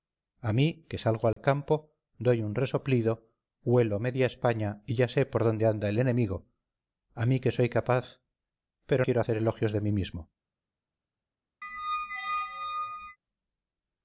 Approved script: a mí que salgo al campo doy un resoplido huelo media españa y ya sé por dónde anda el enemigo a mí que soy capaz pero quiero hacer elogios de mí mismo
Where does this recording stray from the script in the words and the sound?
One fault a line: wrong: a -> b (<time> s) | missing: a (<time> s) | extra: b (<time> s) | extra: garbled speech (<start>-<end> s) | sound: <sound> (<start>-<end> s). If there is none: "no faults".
sound: dropout (1.3-1.4 s)
sound: squeak (11.6-13.2 s)